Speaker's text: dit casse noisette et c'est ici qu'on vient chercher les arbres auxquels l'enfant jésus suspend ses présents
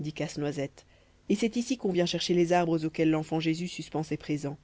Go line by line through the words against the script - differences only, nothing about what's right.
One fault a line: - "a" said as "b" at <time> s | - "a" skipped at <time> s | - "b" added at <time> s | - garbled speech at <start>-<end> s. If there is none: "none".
none